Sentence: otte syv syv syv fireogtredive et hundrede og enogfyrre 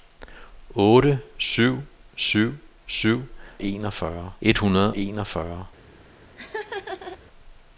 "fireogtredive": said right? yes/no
no